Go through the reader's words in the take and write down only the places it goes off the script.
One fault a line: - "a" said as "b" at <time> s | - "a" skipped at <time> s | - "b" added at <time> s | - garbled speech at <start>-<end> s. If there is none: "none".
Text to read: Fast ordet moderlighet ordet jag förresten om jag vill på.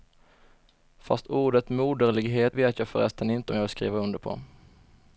- "ordet" said as "vet" at 2.5 s
- "inte" added at 3.3 s
- "skriva under" added at 3.7 s